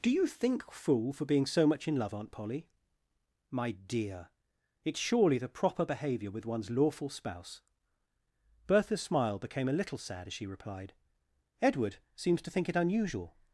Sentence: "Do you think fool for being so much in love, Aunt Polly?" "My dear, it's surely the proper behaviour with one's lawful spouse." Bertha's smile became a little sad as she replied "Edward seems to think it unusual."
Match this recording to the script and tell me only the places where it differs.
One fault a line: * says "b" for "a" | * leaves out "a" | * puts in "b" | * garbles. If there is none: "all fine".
all fine